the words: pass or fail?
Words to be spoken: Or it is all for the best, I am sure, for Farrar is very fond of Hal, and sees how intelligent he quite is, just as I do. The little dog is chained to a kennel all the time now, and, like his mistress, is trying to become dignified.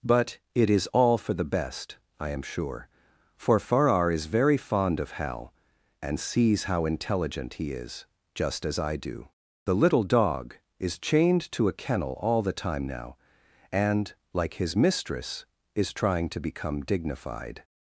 fail